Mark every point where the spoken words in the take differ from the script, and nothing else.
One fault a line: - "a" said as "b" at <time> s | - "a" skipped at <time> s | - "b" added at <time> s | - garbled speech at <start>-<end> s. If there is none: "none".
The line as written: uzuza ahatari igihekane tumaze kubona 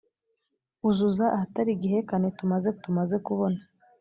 - "tumaze" added at 2.8 s